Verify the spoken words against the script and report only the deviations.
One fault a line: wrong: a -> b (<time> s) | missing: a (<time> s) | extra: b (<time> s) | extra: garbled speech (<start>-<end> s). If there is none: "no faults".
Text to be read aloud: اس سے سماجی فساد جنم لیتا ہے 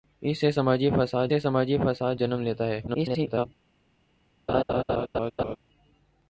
extra: سے سماجی فساد (1.3 s)
extra: garbled speech (2.9-3.5 s)